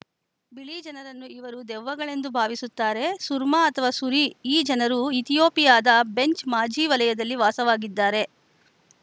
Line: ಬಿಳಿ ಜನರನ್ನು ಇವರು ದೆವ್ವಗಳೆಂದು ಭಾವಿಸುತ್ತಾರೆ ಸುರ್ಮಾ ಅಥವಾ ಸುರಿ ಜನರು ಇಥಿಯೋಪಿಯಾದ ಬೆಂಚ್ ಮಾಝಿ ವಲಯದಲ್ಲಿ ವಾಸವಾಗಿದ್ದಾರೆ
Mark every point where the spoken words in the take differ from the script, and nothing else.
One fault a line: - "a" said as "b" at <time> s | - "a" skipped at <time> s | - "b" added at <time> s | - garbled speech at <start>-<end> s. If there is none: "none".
- "ಈ" added at 4.5 s